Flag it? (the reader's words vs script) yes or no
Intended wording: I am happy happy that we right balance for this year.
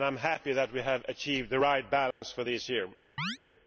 yes